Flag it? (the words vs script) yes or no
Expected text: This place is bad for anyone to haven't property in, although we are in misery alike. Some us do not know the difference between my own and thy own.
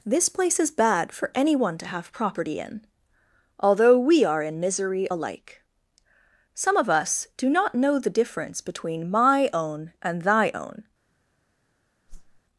yes